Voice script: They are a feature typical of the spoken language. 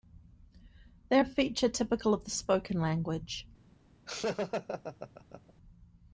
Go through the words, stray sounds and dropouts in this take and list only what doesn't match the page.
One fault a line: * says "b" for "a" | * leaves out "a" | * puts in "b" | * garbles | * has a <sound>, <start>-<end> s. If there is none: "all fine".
* leaves out "are"
* has a laugh, 4.1-5.5 s